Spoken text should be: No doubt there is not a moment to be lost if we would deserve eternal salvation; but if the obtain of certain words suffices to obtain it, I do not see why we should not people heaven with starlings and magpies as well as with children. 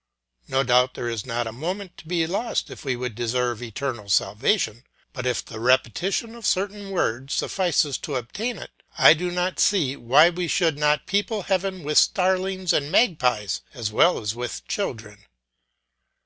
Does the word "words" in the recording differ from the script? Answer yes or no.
no